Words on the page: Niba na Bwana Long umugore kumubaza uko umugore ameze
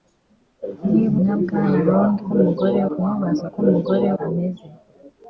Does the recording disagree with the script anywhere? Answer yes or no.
no